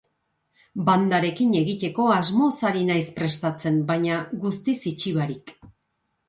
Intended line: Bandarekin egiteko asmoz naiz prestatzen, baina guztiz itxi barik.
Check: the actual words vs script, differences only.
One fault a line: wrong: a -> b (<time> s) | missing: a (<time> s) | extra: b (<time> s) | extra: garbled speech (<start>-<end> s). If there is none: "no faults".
extra: ari (2.7 s)